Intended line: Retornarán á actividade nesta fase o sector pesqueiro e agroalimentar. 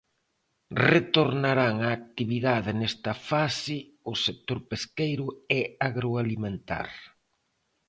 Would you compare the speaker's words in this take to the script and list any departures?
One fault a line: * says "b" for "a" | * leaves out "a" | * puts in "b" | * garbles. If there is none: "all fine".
all fine